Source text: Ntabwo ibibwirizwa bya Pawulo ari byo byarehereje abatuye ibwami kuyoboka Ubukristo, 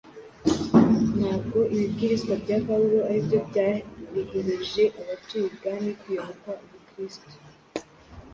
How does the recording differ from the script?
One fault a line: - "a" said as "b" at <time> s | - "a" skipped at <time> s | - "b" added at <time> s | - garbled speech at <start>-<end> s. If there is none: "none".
none